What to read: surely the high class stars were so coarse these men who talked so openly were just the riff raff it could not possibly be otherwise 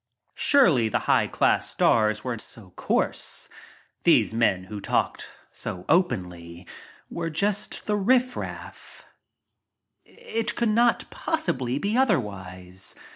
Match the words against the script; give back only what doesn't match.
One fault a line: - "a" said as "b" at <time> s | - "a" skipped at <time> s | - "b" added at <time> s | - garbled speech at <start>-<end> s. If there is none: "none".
none